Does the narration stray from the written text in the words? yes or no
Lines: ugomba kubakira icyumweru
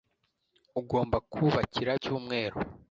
no